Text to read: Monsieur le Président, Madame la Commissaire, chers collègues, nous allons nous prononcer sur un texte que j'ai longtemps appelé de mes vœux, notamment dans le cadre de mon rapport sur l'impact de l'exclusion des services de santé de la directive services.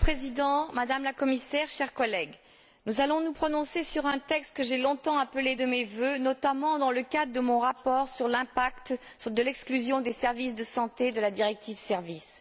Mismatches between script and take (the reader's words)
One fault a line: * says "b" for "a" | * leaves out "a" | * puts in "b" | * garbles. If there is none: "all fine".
all fine